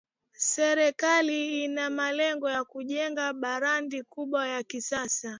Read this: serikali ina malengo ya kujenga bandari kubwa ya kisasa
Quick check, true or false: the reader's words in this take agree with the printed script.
true